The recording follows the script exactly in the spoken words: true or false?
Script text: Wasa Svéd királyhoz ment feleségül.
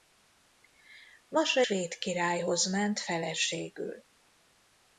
true